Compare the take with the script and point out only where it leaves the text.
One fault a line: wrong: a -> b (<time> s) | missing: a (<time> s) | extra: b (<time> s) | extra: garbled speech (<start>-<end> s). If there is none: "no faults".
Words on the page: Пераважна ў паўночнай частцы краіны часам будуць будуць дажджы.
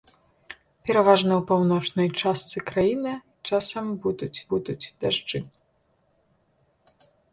no faults